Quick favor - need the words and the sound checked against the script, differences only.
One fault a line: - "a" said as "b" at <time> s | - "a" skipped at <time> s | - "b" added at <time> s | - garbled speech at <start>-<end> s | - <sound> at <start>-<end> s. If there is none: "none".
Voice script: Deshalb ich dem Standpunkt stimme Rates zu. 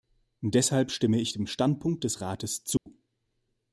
- "stimme" added at 0.9 s
- "stimme" said as "des" at 2.0 s
- dropout at 2.8-2.9 s